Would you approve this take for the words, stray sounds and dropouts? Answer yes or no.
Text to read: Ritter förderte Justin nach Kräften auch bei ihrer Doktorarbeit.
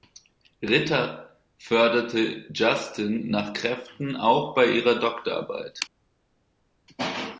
yes